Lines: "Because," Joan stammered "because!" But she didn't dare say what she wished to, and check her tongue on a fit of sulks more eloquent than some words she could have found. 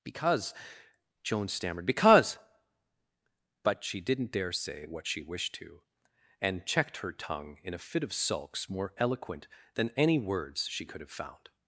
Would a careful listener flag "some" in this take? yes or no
yes